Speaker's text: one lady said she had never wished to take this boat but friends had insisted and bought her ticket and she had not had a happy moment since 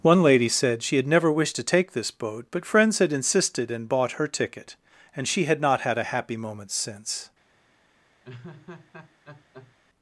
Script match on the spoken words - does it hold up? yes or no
yes